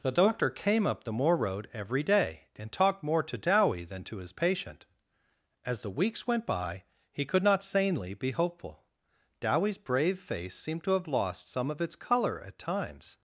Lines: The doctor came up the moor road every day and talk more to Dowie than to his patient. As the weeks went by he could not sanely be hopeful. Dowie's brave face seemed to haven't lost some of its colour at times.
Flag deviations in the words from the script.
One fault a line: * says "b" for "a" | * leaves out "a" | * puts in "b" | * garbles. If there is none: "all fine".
* says "talked" for "talk"
* says "have" for "haven't"